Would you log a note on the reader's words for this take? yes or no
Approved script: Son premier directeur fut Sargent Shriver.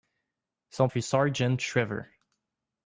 yes